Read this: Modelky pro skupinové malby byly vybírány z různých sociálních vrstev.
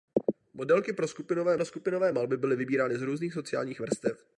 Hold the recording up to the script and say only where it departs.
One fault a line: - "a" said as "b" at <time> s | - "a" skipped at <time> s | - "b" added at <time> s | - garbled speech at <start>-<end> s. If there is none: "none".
- "pro skupinové" added at 1.5 s